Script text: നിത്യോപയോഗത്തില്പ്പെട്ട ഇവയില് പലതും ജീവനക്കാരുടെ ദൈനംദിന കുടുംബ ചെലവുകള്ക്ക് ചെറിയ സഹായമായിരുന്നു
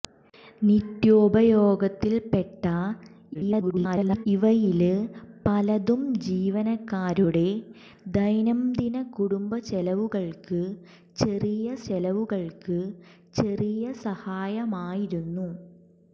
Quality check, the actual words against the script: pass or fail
fail